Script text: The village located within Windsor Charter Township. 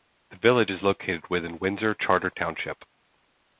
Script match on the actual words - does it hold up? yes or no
no